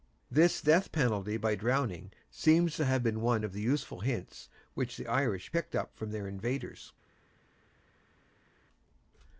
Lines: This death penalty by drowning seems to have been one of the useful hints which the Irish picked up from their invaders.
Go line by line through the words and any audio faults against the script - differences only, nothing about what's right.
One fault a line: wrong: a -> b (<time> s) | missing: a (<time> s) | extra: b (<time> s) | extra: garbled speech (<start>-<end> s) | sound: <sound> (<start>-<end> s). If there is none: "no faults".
no faults